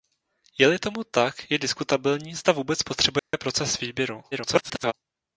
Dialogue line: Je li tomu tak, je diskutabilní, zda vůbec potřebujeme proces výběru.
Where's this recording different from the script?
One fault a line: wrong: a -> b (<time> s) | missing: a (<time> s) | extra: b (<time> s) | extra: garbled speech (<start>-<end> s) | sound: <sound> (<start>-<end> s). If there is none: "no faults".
sound: dropout (3.2-3.3 s)
extra: garbled speech (4.3-4.9 s)